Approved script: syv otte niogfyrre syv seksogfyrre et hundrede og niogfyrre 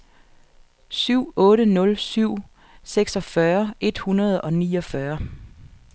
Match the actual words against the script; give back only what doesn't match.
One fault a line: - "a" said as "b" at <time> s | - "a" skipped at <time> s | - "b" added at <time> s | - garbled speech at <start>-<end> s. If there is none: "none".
- "niogfyrre" said as "nul" at 1.6 s